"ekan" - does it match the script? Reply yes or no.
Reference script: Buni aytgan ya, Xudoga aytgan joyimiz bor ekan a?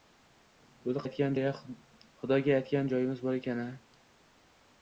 yes